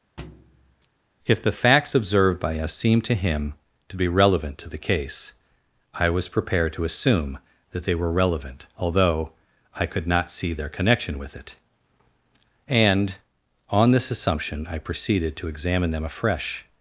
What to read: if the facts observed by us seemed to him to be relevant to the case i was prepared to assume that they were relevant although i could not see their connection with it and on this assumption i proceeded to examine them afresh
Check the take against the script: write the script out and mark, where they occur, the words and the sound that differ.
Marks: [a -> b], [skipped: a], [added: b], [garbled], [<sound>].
[thud] if the facts observed by us seemed to him to be relevant to the case i was prepared to assume that they were relevant although i could not see their connection with it and on this assumption i proceeded to examine them afresh